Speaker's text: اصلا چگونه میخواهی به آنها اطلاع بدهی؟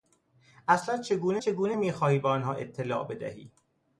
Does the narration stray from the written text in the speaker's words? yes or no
yes